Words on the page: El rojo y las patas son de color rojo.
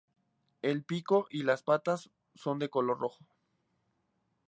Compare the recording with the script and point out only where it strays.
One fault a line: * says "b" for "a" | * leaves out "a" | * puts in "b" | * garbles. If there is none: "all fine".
* says "pico" for "rojo"